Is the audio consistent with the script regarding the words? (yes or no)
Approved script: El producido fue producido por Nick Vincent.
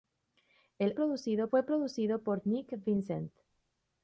yes